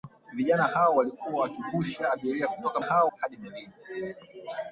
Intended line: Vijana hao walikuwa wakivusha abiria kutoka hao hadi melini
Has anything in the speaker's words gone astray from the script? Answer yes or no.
no